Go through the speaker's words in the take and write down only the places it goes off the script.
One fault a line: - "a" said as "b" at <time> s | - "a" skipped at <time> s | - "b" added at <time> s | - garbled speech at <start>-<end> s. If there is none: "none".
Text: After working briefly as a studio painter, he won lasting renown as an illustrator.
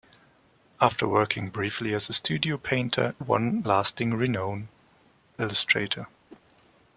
- "he" skipped at 3.1 s
- "as an" skipped at 4.7 s